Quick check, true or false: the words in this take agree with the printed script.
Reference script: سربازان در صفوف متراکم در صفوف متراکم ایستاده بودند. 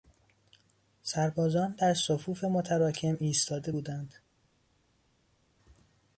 false